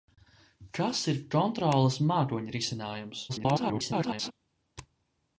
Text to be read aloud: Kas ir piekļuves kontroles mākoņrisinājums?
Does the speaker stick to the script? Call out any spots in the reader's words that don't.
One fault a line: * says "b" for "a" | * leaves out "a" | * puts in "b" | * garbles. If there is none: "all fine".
* leaves out "piekļuves"
* garbles